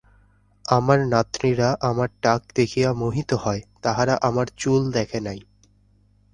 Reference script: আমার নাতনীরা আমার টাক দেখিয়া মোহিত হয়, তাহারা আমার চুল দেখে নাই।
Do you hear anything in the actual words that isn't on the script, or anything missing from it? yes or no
no